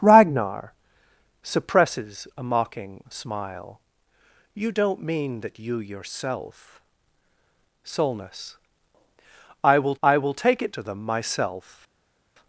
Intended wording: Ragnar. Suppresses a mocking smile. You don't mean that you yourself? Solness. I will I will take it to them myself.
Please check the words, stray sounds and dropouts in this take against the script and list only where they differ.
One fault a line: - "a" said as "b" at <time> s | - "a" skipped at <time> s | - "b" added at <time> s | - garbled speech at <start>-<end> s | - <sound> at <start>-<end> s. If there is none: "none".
none